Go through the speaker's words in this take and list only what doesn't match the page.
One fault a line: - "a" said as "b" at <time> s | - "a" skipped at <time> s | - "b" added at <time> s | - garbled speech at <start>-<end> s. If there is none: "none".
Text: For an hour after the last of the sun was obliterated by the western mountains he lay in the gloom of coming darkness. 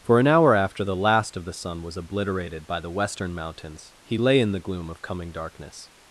none